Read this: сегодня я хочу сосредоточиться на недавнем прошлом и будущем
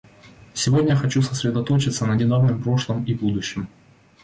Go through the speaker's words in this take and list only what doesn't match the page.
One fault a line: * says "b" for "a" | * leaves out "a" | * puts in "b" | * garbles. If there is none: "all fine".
all fine